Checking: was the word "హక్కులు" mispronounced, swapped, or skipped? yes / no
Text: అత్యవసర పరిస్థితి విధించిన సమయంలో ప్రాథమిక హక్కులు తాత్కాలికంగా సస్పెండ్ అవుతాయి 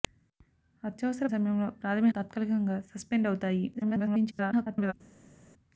yes